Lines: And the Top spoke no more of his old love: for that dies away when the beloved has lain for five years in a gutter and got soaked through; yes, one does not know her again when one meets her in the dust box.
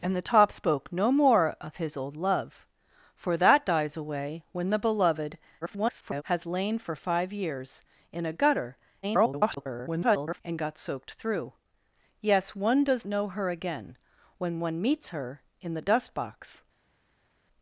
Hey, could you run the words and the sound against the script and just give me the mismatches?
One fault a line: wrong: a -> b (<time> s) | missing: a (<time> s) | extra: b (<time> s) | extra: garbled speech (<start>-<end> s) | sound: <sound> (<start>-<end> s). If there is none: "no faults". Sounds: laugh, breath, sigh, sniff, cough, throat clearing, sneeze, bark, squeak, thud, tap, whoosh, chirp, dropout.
extra: garbled speech (5.6-6.2 s)
extra: garbled speech (9.0-10.4 s)
missing: not (13.1 s)